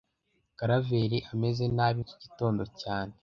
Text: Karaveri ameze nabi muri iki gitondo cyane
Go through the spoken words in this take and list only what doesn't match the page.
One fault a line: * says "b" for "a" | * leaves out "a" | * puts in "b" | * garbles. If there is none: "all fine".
* leaves out "muri"